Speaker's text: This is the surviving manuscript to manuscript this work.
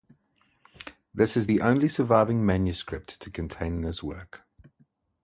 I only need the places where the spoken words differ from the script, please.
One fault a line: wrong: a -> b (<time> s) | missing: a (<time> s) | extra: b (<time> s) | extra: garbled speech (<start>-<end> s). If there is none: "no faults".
extra: only (1.6 s)
wrong: manuscript -> contain (3.3 s)